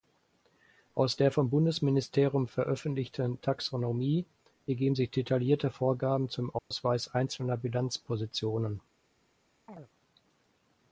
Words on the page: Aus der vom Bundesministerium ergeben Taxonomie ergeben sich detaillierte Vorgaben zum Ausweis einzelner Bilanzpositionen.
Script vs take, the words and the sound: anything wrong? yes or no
yes